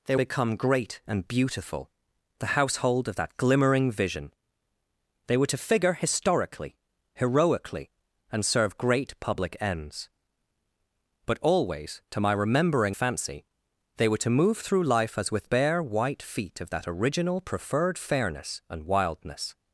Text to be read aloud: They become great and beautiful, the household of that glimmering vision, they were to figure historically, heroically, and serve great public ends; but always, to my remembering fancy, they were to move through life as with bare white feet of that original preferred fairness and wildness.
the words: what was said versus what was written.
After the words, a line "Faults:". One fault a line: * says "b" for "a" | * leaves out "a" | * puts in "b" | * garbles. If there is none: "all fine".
They become great and beautiful, the household of that glimmering vision, they were to figure historically, heroically, and serve great public ends; but always, to my remembering fancy, they were to move through life as with bare white feet of that original preferred fairness and wildness.
Faults:
all fine